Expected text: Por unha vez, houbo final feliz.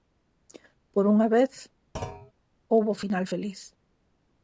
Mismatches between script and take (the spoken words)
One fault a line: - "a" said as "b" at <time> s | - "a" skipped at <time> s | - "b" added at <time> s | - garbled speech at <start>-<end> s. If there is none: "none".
none